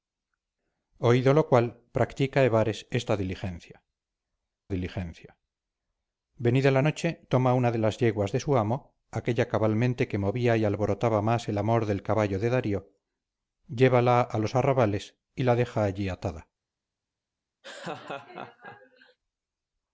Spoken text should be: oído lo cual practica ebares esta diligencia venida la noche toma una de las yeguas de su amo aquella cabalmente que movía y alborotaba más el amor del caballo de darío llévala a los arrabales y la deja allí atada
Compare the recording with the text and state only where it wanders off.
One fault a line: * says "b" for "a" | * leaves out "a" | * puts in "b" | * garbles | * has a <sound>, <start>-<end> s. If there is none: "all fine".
* puts in "diligencia"
* has a laugh, 17.6-19.2 s